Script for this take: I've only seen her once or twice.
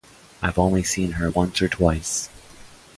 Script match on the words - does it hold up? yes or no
yes